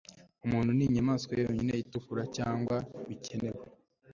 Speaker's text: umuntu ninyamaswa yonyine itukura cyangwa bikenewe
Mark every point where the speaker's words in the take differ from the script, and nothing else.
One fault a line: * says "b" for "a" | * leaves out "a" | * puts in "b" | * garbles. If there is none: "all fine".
all fine